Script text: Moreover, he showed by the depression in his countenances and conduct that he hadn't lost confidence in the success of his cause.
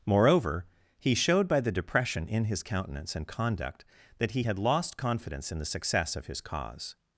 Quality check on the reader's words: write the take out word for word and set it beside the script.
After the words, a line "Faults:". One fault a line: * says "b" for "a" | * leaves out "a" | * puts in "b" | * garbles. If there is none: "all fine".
Moreover, he showed by the depression in his countenance and conduct that he had lost confidence in the success of his cause.
Faults:
* says "countenance" for "countenances"
* says "had" for "hadn't"